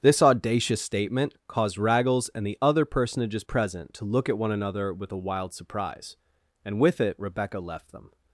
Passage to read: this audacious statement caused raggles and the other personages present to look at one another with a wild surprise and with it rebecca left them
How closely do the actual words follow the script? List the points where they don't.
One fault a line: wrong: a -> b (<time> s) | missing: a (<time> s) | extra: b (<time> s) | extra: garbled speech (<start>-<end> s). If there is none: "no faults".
no faults